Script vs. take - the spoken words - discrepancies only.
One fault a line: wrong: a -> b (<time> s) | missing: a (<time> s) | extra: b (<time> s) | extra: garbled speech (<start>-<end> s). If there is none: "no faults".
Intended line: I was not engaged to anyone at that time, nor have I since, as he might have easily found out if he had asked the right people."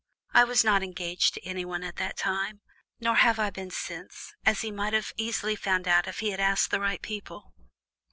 extra: been (3.5 s)